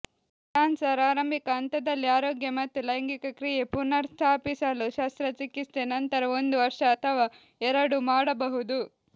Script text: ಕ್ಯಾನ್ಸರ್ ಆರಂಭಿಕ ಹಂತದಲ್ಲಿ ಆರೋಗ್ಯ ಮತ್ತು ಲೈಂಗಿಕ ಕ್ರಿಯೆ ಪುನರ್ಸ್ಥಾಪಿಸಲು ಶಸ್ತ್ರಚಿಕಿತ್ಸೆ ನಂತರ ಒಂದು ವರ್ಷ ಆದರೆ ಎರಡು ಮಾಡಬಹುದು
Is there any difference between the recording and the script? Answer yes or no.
yes